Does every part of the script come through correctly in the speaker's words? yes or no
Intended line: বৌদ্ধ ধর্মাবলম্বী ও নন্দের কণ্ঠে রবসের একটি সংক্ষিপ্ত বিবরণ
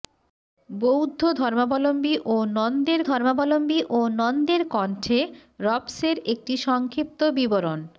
no